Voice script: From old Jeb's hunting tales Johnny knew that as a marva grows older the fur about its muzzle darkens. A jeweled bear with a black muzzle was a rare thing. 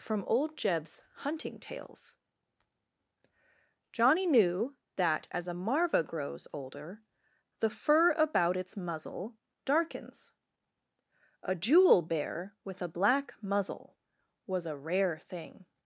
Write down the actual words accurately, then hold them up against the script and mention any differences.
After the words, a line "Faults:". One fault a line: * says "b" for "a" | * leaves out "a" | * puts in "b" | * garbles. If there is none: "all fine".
From old Jeb's hunting tales Johnny knew that as a marva grows older the fur about its muzzle darkens. A jewel bear with a black muzzle was a rare thing.
Faults:
* says "jewel" for "jeweled"